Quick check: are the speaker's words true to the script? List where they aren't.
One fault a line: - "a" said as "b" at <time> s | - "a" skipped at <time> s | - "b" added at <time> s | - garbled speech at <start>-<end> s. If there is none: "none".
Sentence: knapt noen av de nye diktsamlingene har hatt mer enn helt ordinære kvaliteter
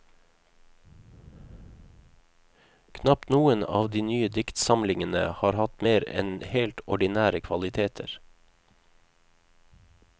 none